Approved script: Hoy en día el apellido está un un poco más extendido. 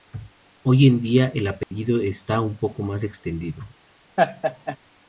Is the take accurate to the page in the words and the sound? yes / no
no